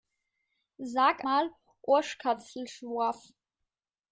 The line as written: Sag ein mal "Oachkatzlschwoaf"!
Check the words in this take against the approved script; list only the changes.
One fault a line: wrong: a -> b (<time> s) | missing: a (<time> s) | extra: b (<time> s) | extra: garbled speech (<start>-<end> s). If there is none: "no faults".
missing: ein (1.3 s)